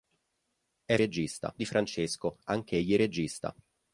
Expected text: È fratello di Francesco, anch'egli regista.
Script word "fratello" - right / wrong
wrong